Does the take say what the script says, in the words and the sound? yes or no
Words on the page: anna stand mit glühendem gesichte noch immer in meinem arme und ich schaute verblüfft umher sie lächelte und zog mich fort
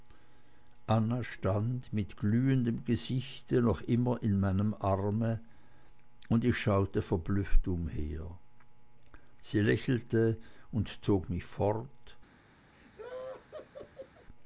no